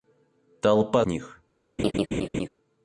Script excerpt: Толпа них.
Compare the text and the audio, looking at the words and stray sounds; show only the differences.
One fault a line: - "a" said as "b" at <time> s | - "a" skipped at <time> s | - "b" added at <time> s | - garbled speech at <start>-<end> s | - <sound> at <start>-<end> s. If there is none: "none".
- laugh at 1.8-2.5 s